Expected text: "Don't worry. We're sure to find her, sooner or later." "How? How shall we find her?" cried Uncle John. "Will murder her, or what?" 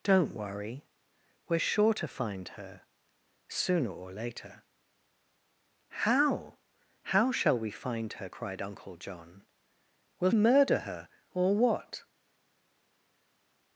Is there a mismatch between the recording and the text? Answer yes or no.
no